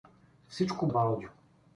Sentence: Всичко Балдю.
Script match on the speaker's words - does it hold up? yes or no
yes